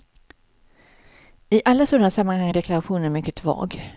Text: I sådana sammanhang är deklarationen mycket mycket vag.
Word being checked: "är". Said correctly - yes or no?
yes